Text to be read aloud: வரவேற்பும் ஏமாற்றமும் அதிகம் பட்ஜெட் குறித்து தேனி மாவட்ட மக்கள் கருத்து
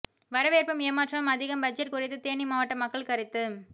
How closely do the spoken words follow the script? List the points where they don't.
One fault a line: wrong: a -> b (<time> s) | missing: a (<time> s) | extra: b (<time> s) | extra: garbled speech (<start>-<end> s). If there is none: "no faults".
no faults